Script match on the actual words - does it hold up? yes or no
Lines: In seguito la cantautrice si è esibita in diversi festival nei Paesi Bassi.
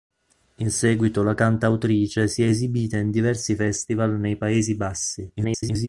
no